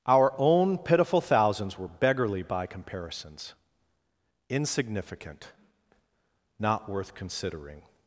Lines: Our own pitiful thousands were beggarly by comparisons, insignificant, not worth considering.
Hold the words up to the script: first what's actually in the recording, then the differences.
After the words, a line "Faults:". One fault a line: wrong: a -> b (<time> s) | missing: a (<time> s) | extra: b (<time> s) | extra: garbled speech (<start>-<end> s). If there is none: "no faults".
Our own pitiful thousands were beggarly by comparisons, insignificant, not worth considering.
Faults:
no faults